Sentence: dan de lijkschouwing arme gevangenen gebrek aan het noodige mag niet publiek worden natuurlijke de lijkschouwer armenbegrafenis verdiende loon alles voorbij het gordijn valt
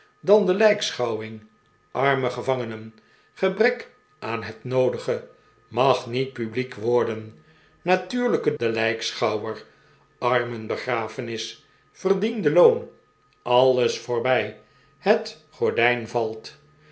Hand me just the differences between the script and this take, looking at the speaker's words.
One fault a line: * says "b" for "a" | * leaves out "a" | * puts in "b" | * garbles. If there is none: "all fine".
all fine